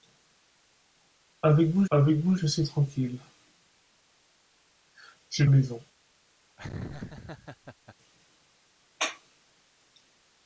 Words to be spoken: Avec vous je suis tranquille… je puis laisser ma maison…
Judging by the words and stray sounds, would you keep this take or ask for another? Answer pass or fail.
fail